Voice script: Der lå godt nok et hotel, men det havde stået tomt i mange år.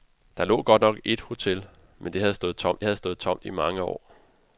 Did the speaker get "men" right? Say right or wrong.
right